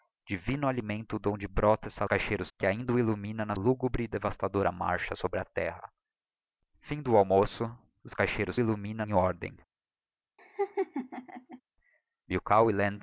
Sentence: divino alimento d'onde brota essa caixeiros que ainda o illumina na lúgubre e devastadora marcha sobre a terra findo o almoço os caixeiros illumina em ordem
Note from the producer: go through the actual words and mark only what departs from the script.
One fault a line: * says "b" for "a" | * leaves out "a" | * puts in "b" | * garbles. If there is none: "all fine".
all fine